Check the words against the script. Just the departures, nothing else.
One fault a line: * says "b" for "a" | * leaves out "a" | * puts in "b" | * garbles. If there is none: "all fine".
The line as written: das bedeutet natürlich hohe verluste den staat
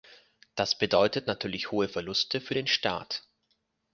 * puts in "für"